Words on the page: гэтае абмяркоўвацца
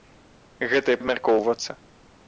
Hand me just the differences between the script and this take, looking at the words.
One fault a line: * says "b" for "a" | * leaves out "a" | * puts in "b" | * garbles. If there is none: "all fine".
all fine